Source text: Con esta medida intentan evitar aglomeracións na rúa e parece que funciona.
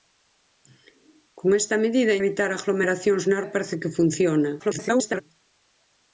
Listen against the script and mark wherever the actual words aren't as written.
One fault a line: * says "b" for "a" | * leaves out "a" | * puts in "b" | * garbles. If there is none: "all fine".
* leaves out "intentan"
* leaves out "rúa"
* garbles